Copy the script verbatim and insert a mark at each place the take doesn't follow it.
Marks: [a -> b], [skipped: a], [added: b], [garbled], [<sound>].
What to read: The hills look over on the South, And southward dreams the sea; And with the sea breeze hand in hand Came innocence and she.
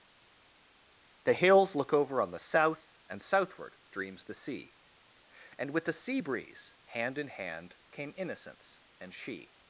The hills look over on the South, And southward dreams the sea; And with the sea breeze hand in hand Came innocence and she.